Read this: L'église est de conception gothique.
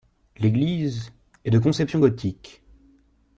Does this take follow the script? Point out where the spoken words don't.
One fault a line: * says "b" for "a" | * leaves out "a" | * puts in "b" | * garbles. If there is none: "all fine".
all fine